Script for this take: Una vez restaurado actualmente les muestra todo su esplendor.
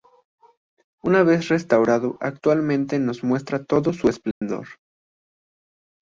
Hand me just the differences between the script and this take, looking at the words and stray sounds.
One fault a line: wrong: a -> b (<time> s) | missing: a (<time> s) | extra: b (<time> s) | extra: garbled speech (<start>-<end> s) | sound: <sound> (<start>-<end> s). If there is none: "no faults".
wrong: les -> nos (3.0 s)
sound: dropout (4.3-4.4 s)